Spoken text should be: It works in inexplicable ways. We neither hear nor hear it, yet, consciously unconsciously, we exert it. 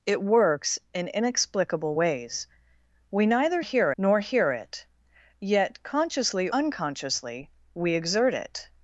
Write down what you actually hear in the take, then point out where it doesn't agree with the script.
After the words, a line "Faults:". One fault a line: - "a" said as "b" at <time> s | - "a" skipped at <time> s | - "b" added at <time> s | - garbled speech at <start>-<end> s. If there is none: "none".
It works in inexplicable ways. We neither hear nor hear it, yet, consciously unconsciously, we exert it.
Faults:
none